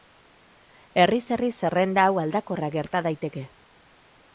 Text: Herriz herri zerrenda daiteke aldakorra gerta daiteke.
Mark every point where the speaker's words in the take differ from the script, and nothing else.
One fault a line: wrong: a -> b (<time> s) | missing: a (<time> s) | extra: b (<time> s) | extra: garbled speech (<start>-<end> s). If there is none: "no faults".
wrong: daiteke -> hau (2.1 s)